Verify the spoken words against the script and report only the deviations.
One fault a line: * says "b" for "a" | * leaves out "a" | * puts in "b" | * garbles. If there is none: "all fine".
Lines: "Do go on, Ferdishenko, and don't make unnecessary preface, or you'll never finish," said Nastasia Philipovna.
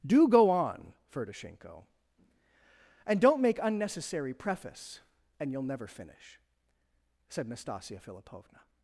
* says "and" for "or"